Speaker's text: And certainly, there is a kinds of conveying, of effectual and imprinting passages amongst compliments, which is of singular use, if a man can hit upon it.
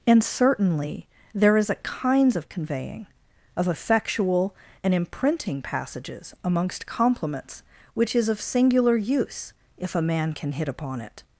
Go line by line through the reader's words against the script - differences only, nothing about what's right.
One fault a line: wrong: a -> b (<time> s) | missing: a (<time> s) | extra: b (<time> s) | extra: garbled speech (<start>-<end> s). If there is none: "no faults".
no faults